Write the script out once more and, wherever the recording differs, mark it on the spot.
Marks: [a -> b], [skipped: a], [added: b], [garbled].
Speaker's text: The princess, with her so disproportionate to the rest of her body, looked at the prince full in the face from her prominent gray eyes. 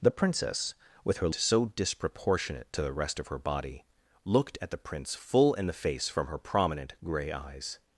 The princess, with her so disproportionate to the rest of her body, looked at the prince full in the face from her prominent gray eyes.